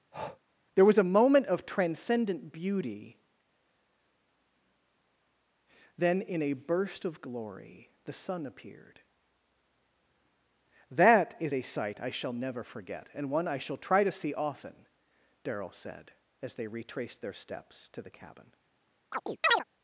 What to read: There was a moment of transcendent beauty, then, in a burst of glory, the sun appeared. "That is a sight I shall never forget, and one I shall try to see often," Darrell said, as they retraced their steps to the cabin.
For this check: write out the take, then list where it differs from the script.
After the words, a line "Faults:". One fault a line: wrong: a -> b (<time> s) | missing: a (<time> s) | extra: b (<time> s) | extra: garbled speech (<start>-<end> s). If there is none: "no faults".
There was a moment of transcendent beauty, then, in a burst of glory, the sun appeared. "That is a sight I shall never forget, and one I shall try to see often," Darrell said, as they retraced their steps to the cabin.
Faults:
no faults